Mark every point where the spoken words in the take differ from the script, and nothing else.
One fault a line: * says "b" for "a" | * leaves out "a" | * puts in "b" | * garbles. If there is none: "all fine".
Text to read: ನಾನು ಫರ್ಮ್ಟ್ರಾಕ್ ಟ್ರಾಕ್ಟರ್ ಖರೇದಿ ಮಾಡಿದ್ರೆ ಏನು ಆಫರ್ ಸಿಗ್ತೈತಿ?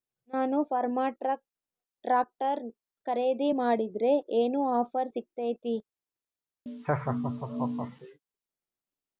all fine